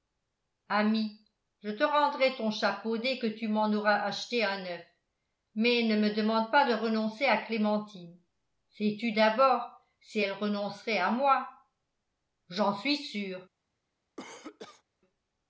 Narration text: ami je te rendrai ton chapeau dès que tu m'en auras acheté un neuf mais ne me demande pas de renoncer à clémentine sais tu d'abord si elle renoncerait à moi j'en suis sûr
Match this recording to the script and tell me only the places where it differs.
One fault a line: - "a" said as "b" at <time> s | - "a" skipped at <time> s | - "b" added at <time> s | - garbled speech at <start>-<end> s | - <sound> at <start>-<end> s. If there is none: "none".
- cough at 14.2-14.8 s